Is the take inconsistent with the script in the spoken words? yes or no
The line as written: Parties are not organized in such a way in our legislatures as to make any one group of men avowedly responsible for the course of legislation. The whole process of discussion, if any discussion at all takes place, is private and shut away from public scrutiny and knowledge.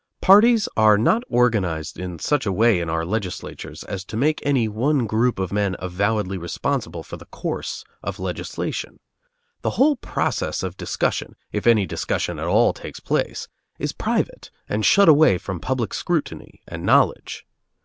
no